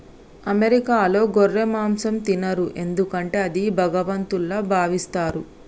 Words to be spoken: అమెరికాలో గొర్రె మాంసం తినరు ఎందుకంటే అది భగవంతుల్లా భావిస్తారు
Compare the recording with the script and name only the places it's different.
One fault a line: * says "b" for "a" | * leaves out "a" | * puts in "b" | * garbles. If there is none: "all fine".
all fine